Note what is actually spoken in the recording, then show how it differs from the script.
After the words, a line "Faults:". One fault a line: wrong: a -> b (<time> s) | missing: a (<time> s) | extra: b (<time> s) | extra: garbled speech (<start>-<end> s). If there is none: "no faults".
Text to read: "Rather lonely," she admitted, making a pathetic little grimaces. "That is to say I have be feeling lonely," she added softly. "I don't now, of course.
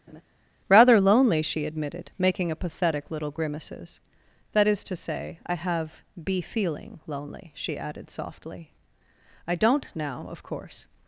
"Rather lonely," she admitted, making a pathetic little grimaces. "That is to say I have be feeling lonely," she added softly. "I don't now, of course.
Faults:
no faults